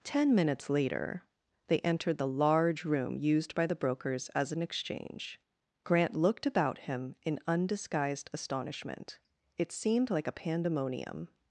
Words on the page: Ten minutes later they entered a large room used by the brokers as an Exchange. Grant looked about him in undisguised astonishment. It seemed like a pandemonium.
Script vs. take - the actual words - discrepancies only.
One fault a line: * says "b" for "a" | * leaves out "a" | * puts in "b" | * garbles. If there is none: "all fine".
* says "the" for "a"